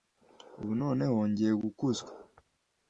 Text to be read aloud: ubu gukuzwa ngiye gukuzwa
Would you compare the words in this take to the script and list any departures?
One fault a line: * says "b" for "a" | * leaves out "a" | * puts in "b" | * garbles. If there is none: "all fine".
* says "noneho" for "gukuzwa"